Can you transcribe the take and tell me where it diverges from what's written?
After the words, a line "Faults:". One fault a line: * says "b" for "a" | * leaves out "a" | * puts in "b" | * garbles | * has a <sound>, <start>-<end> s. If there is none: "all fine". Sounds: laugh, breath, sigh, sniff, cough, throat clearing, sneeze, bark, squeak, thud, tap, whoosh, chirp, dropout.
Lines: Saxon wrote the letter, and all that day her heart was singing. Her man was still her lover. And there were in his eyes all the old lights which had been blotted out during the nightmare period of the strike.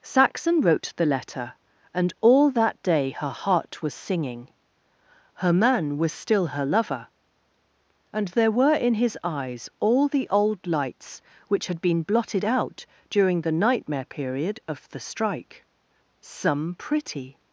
Saxon wrote the letter, and all that day her heart was singing. Her man was still her lover. And there were in his eyes all the old lights which had been blotted out during the nightmare period of the strike. "Some pretty
Faults:
* puts in "Some pretty"